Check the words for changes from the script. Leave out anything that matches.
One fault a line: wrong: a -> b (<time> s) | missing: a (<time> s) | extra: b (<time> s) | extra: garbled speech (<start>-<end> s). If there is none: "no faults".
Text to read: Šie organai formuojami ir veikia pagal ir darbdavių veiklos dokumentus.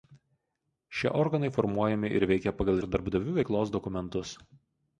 no faults